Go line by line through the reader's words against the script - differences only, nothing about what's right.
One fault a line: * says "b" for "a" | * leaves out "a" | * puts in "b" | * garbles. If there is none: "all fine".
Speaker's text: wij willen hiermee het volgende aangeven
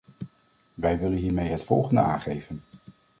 all fine